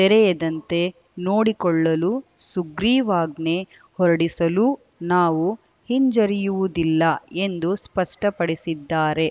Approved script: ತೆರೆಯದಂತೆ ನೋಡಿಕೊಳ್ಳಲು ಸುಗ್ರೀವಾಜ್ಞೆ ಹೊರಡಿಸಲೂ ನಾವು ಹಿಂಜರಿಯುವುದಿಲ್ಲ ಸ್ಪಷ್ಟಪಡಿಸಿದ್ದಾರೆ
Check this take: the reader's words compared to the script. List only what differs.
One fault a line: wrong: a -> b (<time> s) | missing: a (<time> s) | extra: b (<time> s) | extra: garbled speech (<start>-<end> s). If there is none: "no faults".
extra: ಎಂದು (7.4 s)